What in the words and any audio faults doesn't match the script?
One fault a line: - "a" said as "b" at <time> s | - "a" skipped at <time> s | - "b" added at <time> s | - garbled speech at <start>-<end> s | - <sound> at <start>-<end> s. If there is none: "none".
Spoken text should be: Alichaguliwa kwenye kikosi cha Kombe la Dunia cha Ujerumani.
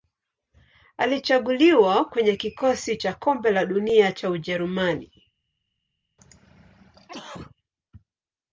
- throat clearing at 6.2-7.6 s